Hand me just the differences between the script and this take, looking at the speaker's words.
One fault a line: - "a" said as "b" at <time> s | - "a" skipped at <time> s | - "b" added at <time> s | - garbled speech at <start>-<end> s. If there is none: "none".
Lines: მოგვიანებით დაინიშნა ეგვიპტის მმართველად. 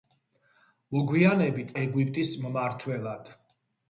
- "დაინიშნა" skipped at 1.8 s